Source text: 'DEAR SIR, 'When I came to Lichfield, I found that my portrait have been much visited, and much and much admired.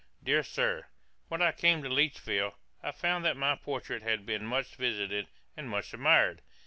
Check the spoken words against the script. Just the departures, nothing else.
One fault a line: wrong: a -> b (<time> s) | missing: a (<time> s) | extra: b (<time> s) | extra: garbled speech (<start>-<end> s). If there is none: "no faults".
wrong: have -> had (4.0 s)
missing: and much (5.9 s)